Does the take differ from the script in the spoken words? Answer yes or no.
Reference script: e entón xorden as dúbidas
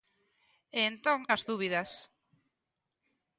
yes